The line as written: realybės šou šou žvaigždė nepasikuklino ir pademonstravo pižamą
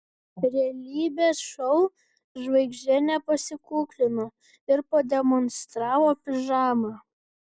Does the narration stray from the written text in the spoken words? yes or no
yes